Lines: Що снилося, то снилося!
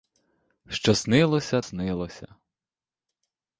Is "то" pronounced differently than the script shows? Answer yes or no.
yes